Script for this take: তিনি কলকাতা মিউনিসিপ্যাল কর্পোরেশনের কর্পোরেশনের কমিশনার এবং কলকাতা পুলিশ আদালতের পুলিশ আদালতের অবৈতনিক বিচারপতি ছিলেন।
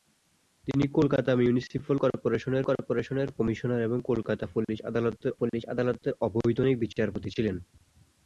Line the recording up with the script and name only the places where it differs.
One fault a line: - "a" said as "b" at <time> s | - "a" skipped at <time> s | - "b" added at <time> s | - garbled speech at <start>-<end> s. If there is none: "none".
none